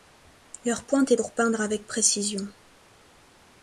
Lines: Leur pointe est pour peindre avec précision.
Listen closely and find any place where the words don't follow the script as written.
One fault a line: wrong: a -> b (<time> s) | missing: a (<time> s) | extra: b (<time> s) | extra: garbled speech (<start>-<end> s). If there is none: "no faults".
no faults